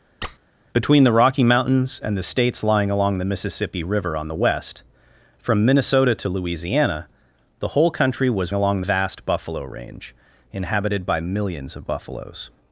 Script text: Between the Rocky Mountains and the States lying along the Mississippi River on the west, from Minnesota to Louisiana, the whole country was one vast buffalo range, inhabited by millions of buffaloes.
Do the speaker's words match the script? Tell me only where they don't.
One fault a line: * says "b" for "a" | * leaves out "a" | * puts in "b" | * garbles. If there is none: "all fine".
* says "along" for "one"